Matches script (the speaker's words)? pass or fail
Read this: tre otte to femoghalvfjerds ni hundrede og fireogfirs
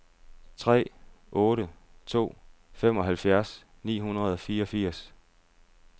pass